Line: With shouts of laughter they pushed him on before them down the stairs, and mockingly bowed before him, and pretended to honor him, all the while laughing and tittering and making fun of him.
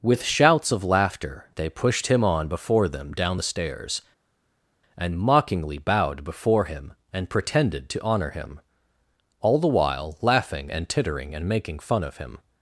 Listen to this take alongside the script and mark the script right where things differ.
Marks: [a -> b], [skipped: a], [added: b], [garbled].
With shouts of laughter they pushed him on before them down the stairs, and mockingly bowed before him, and pretended to honor him, all the while laughing and tittering and making fun of him.